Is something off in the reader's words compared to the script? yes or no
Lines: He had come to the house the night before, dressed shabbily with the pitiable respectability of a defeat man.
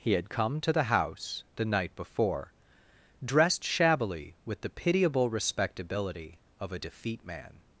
no